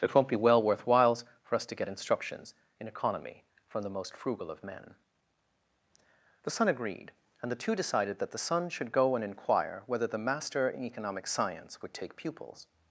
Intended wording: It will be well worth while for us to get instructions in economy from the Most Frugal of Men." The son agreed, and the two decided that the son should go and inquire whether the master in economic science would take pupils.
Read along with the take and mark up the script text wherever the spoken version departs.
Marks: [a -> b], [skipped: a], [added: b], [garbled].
It [will -> won't] be well worth [while -> whiles] for us to get instructions in economy from the Most Frugal of Men." The son agreed, and the two decided that the son should go and inquire whether the master in economic science would take pupils.